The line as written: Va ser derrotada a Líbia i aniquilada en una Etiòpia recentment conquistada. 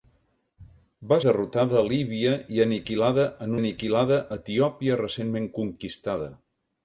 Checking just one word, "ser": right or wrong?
wrong